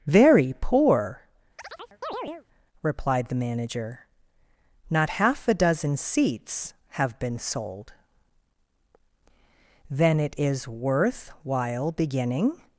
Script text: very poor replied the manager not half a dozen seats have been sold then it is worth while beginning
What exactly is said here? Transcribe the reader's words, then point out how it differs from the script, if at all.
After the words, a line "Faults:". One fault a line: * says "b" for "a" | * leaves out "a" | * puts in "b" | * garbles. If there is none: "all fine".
very poor replied the manager not half a dozen seats have been sold then it is worth while beginning
Faults:
all fine